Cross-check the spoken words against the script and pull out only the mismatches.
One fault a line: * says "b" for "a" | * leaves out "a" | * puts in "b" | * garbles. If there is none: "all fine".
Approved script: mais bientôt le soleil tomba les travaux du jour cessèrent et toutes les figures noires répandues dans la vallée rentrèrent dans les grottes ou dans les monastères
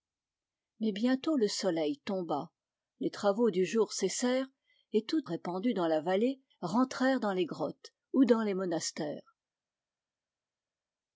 * leaves out "les figures noires"